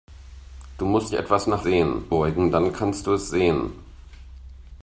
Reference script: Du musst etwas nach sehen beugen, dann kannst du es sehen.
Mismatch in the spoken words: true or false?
false